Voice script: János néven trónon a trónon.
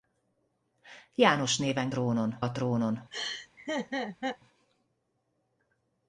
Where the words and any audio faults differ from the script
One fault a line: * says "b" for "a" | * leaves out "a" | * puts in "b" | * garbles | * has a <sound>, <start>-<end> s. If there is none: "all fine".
* has a laugh, 3.1-4.4 s